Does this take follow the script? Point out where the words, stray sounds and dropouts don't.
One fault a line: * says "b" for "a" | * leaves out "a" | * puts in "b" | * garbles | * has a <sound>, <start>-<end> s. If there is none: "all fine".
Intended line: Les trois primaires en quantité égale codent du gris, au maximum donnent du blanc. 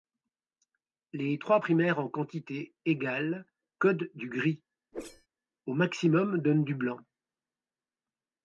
* has a whoosh, 4.9-5.3 s